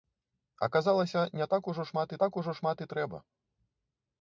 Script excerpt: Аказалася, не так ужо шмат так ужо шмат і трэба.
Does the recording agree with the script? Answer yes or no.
yes